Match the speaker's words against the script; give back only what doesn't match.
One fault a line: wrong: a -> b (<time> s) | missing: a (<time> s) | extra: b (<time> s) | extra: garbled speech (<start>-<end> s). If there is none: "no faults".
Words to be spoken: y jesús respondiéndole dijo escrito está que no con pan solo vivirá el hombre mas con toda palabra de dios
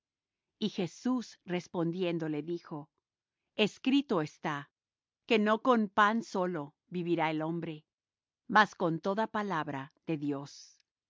no faults